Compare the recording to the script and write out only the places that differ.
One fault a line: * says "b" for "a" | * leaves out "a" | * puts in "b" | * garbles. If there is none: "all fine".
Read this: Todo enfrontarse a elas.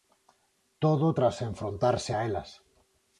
* puts in "tras"